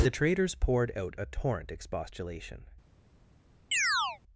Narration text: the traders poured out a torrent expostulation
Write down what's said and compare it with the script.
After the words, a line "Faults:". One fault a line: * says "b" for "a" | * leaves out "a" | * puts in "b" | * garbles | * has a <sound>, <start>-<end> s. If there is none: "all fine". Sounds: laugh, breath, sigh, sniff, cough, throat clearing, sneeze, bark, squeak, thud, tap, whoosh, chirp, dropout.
the traders poured out a torrent expostulation
Faults:
* has a chirp, 3.7-4.2 s